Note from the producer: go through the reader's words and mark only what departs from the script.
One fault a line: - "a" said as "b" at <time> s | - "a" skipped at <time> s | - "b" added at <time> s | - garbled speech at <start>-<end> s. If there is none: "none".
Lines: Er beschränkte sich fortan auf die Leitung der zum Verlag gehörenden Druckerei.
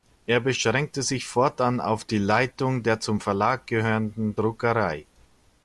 none